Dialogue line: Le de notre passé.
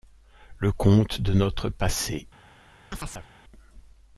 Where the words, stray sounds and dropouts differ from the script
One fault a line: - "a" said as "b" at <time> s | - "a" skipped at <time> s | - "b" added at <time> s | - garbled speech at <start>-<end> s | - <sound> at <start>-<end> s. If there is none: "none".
- "conte" added at 0.7 s
- chirp at 2.9-3.3 s